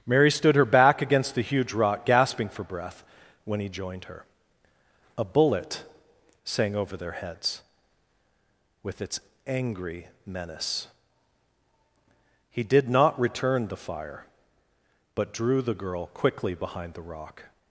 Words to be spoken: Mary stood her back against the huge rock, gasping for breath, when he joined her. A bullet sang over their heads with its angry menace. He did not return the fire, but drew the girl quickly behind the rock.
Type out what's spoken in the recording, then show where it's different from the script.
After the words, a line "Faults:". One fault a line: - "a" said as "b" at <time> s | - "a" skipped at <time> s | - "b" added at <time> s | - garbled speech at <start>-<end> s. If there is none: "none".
Mary stood her back against the huge rock, gasping for breath, when he joined her. A bullet sang over their heads with its angry menace. He did not return the fire, but drew the girl quickly behind the rock.
Faults:
none